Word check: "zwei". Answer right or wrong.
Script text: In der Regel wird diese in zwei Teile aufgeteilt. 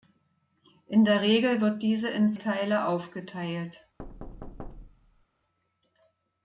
wrong